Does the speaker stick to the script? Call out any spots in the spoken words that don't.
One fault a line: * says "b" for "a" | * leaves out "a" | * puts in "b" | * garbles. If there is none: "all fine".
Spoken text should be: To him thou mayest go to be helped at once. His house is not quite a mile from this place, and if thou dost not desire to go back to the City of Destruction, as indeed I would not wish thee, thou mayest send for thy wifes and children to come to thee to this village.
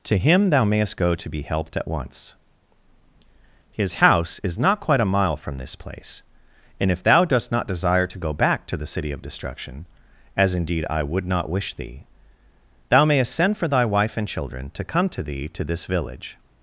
* says "wife" for "wifes"